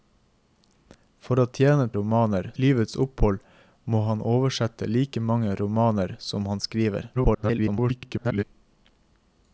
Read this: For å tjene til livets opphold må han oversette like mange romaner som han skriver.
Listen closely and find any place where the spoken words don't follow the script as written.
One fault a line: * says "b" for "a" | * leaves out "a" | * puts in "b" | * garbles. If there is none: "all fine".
* says "romaner" for "til"
* garbles